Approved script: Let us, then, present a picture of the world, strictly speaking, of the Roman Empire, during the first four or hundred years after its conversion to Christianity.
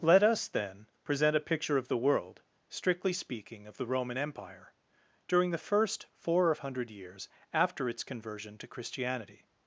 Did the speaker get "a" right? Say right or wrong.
right